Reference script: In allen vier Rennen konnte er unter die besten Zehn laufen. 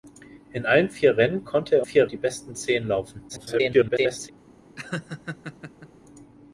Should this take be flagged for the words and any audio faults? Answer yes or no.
yes